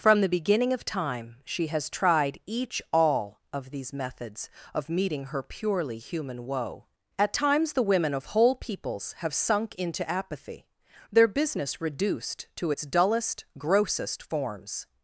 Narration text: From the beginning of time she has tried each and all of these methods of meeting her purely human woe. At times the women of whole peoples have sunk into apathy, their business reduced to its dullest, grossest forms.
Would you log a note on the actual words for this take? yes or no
yes